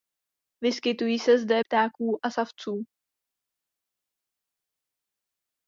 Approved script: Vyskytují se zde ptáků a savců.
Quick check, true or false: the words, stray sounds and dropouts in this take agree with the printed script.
true